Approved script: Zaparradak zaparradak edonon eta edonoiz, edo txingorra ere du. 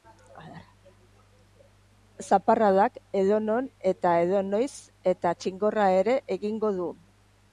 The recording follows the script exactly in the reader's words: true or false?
false